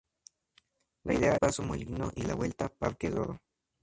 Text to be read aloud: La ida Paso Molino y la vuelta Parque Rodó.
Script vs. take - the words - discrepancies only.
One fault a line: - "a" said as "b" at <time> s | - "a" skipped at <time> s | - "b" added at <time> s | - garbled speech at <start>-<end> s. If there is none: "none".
none